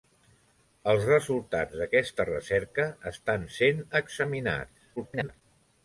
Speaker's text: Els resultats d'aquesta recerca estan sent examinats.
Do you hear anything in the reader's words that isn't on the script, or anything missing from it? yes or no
yes